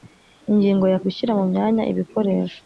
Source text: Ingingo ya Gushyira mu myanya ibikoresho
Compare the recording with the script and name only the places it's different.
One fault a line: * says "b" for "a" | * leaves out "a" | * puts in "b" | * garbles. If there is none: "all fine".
all fine